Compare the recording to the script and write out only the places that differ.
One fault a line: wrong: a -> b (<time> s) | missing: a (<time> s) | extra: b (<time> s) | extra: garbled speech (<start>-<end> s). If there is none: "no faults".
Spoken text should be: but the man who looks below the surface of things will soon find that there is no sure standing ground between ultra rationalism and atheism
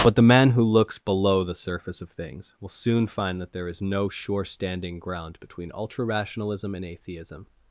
no faults